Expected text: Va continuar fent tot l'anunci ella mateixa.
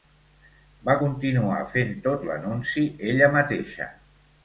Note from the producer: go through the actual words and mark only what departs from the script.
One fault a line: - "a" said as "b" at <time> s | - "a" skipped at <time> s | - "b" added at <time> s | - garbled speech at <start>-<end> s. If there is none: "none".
none